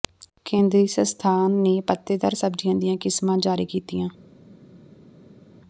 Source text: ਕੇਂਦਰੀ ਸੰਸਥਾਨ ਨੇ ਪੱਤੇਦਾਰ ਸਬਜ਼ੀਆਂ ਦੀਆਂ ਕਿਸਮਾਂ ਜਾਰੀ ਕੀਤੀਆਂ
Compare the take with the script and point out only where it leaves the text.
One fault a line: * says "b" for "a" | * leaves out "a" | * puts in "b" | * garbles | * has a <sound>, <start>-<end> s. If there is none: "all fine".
all fine